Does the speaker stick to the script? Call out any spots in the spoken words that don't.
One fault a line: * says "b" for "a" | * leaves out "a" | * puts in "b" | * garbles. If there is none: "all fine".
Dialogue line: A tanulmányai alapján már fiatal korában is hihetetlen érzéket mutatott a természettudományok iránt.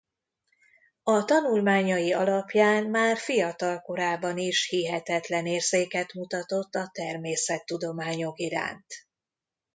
all fine